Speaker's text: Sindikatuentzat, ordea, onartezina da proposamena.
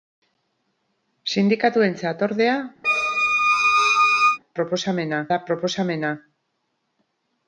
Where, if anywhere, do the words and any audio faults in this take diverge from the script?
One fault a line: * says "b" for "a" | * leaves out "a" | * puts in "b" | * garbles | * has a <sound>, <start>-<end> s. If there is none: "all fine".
* has a squeak, 2.8-4.4 s
* says "proposamena" for "onartezina"